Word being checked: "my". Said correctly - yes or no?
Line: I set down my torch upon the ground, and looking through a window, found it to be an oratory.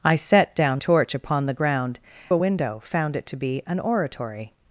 no